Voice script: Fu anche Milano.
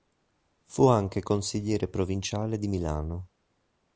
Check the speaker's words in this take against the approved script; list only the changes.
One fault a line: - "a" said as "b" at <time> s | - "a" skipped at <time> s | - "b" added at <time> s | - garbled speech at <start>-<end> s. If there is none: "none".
- "consigliere provinciale di" added at 1.2 s